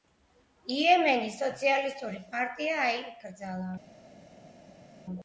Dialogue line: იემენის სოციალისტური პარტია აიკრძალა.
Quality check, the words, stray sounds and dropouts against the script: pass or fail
pass